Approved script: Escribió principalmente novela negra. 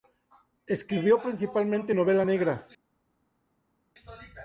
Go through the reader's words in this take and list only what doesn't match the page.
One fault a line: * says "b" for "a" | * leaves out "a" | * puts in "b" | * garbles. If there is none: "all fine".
all fine